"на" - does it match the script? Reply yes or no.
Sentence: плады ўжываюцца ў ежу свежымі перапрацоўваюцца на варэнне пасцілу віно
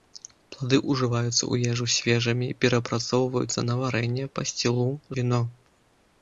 yes